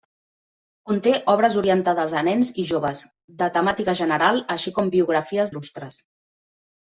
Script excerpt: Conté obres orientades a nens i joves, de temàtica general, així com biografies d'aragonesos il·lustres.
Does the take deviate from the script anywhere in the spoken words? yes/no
yes